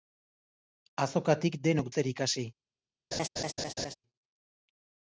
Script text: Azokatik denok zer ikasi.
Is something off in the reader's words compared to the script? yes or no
no